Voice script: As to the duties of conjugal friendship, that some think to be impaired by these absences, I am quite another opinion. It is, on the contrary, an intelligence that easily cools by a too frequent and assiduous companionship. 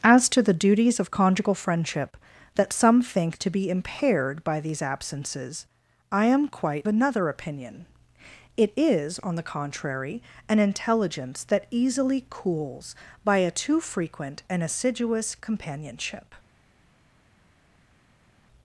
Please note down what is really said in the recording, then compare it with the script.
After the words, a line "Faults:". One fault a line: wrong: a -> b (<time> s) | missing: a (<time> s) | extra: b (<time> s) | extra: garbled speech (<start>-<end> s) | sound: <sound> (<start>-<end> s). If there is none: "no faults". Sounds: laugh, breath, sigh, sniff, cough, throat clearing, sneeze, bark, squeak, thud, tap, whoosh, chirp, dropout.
As to the duties of conjugal friendship, that some think to be impaired by these absences, I am quite another opinion. It is, on the contrary, an intelligence that easily cools by a too frequent and assiduous companionship.
Faults:
no faults